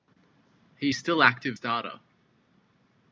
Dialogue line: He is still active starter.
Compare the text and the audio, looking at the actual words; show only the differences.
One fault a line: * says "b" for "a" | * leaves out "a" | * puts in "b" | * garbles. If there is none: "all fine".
all fine